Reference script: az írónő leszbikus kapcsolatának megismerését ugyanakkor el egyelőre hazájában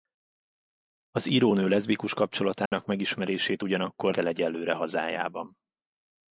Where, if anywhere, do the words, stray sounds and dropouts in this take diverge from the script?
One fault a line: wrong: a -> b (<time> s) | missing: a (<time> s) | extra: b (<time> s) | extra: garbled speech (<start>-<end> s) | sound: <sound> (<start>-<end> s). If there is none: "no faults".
sound: dropout (2.7-2.7 s)